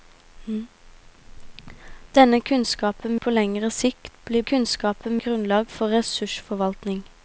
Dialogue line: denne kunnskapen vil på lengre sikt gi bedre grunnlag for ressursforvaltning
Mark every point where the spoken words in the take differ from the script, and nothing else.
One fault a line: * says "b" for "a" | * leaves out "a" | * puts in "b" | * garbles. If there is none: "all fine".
* leaves out "vil"
* says "kunnskapen" for "bedre"